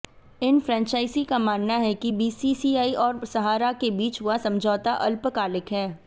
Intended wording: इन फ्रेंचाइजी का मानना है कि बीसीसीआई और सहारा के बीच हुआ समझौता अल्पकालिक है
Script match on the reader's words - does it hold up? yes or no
yes